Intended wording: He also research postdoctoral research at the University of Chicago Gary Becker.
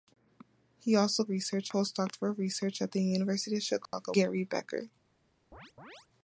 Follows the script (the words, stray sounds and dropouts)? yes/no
no